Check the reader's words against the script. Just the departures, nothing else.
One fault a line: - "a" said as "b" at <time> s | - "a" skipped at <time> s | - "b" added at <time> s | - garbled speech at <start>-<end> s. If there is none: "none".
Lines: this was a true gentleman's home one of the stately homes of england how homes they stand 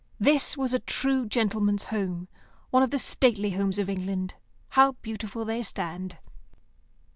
- "homes" said as "beautiful" at 5.0 s